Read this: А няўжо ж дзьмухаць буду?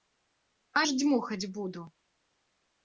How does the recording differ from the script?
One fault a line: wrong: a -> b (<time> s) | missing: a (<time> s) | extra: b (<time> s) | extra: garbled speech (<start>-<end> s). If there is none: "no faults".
missing: няўжо (0.8 s)